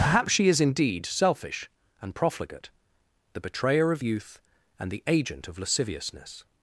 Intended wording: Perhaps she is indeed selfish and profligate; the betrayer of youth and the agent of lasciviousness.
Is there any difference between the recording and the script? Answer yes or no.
no